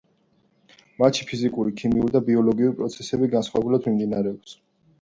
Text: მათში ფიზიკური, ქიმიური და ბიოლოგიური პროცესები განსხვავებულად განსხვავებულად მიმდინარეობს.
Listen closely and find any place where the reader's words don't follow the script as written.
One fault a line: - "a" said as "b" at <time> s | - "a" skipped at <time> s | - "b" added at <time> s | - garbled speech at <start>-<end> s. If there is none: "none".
- "განსხვავებულად" skipped at 3.9 s